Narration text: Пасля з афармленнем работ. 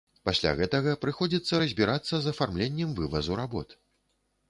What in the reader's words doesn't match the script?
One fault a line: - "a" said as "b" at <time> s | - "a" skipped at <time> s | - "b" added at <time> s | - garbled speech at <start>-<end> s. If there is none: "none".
- "гэтага прыходзіцца разбірацца" added at 0.6 s
- "вывазу" added at 3.0 s